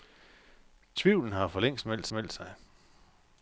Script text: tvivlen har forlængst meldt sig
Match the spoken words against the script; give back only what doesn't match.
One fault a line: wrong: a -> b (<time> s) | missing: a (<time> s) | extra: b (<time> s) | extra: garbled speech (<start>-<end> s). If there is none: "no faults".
extra: meldt (2.1 s)